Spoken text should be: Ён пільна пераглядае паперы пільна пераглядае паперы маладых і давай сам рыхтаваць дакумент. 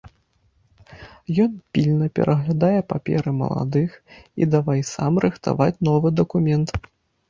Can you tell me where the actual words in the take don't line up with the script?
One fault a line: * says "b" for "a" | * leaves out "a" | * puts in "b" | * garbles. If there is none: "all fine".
* leaves out "пільна пераглядае паперы"
* puts in "новы"